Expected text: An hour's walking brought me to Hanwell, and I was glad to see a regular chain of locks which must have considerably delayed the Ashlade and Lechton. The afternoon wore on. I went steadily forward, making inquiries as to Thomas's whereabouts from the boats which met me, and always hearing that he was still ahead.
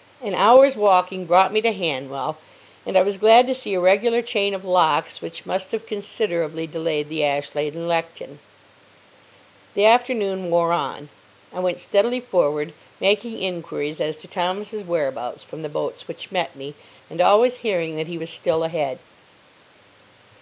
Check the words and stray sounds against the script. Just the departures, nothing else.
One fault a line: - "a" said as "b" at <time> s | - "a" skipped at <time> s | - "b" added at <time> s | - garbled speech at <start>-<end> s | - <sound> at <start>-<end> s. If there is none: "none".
none